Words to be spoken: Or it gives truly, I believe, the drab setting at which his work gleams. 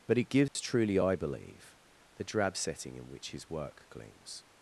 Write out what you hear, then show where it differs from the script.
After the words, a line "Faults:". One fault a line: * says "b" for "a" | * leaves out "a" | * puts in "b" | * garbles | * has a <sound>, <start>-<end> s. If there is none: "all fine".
But it gives truly, I believe, the drab setting in which his work gleams.
Faults:
* says "But" for "Or"
* has a dropout, 0.5-0.6 s
* says "in" for "at"